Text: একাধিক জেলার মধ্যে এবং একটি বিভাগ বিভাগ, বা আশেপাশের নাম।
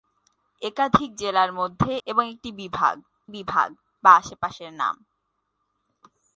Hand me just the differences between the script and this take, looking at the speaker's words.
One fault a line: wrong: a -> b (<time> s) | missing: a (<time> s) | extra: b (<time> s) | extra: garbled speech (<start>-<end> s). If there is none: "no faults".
no faults